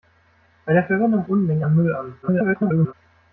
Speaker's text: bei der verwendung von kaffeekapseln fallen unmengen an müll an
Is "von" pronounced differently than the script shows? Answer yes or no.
yes